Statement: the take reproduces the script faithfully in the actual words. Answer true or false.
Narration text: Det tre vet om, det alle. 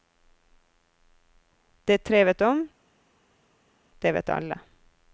false